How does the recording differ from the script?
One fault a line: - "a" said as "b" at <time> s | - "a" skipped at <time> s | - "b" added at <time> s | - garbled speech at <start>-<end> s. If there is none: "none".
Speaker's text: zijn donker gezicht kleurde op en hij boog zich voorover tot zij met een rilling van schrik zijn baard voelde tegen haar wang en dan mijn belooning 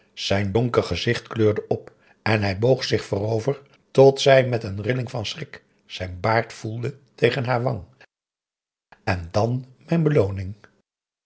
none